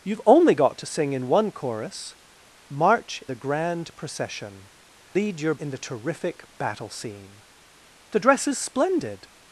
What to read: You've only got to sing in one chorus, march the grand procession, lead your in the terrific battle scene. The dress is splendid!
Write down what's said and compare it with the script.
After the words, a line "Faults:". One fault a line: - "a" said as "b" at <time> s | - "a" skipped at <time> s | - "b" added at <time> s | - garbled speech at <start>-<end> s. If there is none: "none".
You've only got to sing in one chorus, march the grand procession, lead your in the terrific battle scene. The dress is splendid!
Faults:
none